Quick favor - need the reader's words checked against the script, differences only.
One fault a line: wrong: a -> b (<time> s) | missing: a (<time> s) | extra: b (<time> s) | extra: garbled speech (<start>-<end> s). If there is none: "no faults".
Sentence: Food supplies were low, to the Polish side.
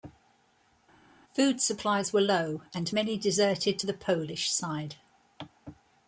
extra: and many deserted (2.7 s)